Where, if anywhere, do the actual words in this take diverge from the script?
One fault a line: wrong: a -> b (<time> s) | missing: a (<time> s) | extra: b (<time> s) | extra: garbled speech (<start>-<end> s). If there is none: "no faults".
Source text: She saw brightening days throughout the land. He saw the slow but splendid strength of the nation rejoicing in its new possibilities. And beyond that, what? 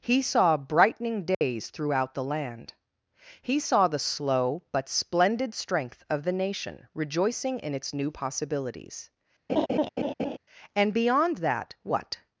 wrong: She -> He (0.0 s)